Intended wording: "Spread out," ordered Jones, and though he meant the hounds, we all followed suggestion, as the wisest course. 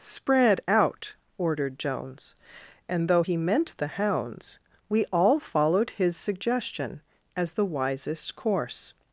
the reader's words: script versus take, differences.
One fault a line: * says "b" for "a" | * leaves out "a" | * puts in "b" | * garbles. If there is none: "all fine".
* puts in "his"